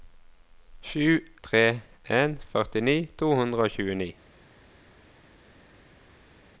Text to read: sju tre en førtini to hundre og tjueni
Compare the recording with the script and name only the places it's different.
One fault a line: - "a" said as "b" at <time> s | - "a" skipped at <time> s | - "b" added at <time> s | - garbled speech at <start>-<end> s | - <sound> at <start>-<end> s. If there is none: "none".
none